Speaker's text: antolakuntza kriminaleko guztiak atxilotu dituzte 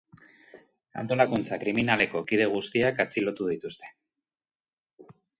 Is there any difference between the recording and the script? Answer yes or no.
yes